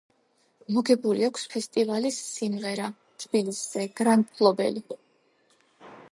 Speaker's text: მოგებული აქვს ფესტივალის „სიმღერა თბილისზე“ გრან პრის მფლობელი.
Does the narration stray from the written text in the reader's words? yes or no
yes